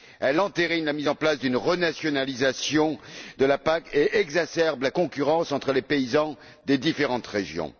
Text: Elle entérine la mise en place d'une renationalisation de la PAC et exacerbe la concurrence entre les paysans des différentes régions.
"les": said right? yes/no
yes